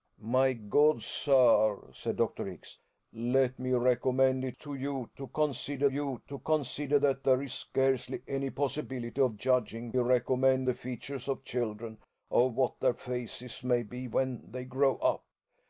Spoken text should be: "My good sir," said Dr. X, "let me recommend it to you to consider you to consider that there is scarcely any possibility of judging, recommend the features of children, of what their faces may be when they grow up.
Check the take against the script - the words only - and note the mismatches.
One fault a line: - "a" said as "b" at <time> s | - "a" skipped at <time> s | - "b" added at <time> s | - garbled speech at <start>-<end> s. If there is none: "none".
none